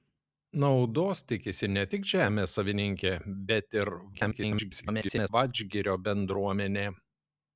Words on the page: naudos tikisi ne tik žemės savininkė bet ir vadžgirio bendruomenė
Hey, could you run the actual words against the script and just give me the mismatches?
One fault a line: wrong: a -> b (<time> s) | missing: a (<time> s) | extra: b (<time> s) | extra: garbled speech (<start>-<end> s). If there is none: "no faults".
extra: garbled speech (4.1-5.3 s)